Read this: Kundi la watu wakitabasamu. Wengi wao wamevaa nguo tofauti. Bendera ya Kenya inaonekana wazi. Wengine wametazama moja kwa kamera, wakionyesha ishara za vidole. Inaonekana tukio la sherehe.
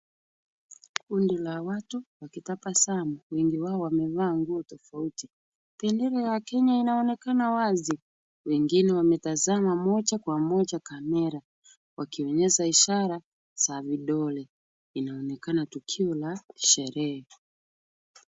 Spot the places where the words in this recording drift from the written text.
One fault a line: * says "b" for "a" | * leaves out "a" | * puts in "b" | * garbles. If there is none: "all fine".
* puts in "moja"